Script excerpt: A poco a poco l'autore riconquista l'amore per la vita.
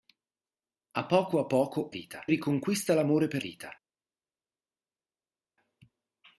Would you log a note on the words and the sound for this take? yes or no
yes